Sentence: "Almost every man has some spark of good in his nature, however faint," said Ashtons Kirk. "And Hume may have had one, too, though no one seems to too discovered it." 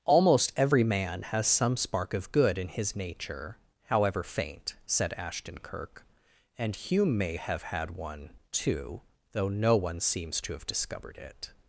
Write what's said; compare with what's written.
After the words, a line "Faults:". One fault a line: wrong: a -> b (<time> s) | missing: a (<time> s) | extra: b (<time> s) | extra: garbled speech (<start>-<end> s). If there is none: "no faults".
"Almost every man has some spark of good in his nature, however faint," said Ashton Kirk. "And Hume may have had one, too, though no one seems to have discovered it."
Faults:
wrong: Ashtons -> Ashton (5.1 s)
wrong: too -> have (10.5 s)